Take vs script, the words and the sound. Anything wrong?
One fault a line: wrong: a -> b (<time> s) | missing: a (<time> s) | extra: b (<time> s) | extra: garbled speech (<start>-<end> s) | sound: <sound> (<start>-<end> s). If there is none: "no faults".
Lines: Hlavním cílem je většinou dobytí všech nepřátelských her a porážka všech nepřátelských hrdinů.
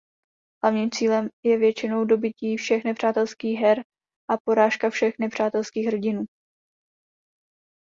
no faults